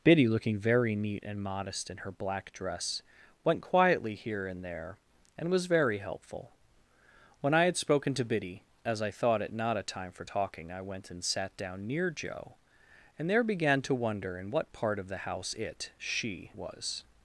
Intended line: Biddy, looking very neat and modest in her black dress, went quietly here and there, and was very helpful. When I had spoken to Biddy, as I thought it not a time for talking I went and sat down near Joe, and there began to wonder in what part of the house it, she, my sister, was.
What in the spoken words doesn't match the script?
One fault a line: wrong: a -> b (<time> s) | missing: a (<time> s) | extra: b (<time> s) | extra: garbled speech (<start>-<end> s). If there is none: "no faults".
missing: my sister (16.5 s)